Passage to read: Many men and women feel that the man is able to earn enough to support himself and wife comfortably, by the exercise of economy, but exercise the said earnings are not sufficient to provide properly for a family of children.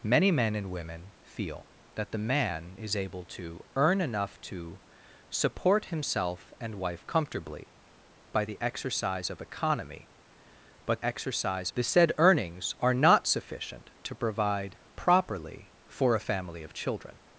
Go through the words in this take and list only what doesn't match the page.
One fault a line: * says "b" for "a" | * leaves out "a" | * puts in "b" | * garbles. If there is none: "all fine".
all fine